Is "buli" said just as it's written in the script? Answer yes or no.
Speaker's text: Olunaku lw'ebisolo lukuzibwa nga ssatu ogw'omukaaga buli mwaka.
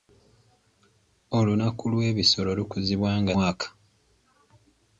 no